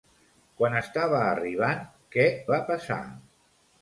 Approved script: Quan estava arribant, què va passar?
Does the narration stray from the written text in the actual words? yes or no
no